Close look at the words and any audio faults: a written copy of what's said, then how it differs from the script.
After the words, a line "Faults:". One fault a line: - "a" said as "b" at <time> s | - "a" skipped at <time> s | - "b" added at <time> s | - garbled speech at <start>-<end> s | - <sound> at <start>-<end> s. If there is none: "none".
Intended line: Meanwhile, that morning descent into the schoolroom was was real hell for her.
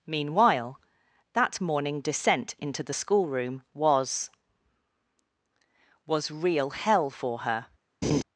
Meanwhile, that morning descent into the schoolroom was was real hell for her.
Faults:
- laugh at 8.0-8.2 s